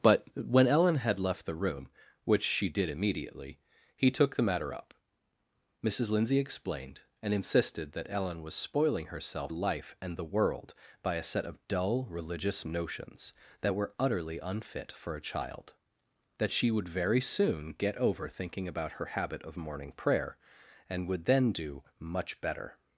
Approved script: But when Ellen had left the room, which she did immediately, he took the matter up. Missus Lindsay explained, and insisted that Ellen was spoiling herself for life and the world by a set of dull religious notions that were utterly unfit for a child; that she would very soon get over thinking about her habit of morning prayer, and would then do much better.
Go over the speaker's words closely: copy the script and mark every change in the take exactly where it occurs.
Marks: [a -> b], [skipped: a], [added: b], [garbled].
But when Ellen had left the room, which she did immediately, he took the matter up. Missus Lindsay explained, and insisted that Ellen was spoiling herself [skipped: for] life and the world by a set of dull religious notions that were utterly unfit for a child; that she would very soon get over thinking about her habit of morning prayer, and would then do much better.